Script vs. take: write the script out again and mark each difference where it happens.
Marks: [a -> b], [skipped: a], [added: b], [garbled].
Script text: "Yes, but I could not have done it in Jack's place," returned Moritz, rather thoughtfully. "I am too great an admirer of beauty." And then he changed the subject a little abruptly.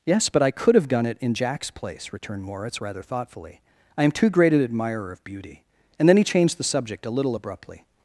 "Yes, but I could [skipped: not] have done it in Jack's place," returned Moritz, rather thoughtfully. "I am too great an admirer of beauty." And then he changed the subject a little abruptly.